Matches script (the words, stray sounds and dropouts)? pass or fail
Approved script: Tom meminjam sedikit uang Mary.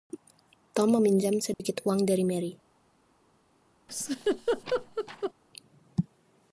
fail